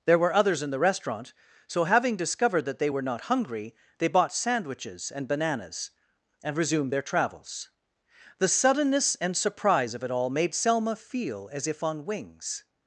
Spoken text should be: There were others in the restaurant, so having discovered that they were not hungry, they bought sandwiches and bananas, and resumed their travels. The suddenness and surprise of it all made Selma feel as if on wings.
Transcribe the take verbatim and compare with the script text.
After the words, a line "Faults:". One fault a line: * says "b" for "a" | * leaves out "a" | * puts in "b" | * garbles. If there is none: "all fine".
There were others in the restaurant, so having discovered that they were not hungry, they bought sandwiches and bananas, and resumed their travels. The suddenness and surprise of it all made Selma feel as if on wings.
Faults:
all fine